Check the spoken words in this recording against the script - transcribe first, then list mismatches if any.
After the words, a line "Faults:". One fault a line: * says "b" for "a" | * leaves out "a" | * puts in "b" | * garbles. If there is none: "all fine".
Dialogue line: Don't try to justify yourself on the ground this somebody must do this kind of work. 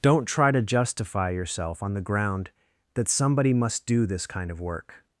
Don't try to justify yourself on the ground that somebody must do this kind of work.
Faults:
* says "that" for "this"